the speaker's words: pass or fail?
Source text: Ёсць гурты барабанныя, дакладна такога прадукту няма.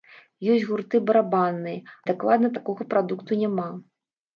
pass